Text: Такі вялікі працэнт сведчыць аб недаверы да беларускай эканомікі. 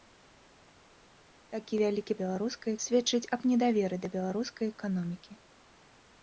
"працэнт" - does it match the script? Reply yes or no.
no